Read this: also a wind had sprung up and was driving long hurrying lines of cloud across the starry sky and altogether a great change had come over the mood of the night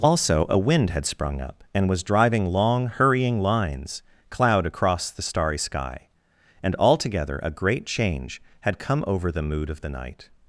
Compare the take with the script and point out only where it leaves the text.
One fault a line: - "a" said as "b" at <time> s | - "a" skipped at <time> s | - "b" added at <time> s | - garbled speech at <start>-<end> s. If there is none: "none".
- "of" skipped at 4.0 s